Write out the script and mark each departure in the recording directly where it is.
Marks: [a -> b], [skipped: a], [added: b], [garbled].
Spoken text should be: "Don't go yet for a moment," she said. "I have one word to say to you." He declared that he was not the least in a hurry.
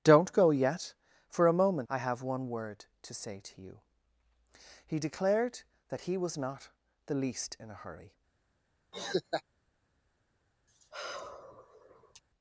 "Don't go yet for a moment," [skipped: she said.] "I have one word to say to you." He declared that he was not the least in a hurry.